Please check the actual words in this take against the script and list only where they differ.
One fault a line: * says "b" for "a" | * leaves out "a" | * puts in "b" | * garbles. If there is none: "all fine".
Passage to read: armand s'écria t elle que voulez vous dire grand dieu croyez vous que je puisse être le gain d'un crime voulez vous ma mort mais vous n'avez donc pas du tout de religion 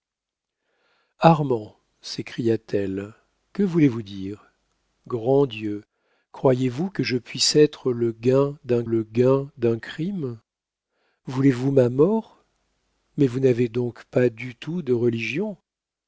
* puts in "le gain d'un"